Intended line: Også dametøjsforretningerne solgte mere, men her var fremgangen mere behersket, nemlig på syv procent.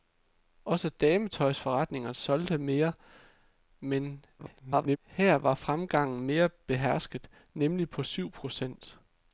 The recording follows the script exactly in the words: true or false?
false